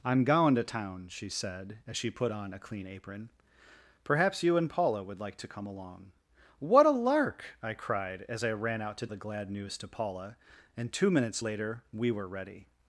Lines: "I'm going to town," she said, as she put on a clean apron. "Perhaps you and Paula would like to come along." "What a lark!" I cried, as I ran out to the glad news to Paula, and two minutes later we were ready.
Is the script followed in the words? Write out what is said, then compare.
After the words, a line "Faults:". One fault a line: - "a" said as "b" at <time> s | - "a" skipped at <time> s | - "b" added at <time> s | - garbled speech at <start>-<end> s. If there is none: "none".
"I'm going to town," she said, as she put on a clean apron. "Perhaps you and Paula would like to come along." "What a lark!" I cried, as I ran out to the glad news to Paula, and two minutes later we were ready.
Faults:
none